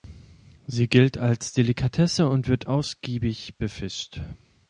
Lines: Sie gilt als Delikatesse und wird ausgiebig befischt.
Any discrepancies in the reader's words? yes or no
no